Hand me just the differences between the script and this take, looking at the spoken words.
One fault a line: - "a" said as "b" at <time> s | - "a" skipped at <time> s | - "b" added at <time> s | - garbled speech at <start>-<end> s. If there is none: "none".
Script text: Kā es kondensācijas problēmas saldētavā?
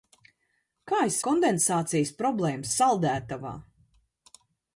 none